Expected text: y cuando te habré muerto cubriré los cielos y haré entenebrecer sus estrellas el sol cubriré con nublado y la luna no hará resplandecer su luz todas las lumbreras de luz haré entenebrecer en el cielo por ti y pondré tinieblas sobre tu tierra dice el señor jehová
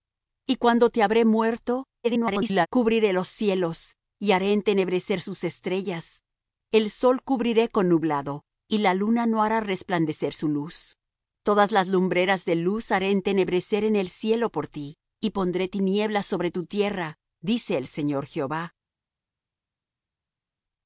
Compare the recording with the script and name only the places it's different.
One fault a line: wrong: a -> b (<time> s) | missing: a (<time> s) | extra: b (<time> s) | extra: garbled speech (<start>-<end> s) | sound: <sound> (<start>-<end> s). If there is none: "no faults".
extra: garbled speech (2.0-2.7 s)